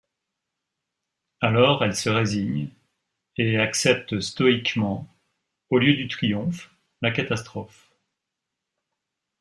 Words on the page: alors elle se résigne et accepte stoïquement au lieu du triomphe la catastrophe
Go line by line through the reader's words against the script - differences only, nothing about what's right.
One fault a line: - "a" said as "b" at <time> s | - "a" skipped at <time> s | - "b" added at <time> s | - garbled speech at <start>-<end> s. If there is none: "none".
none